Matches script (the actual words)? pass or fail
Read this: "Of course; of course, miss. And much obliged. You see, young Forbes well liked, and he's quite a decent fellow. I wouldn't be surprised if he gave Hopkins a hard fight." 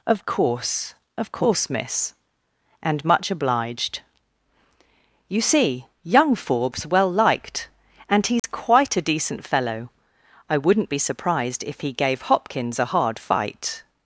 pass